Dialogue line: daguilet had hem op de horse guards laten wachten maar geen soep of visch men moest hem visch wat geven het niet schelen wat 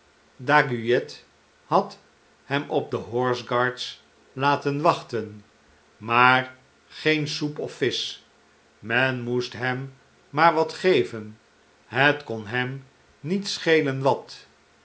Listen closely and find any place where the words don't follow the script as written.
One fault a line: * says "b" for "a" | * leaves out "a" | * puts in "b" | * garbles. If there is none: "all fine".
* says "maar" for "visch"
* puts in "kon hem"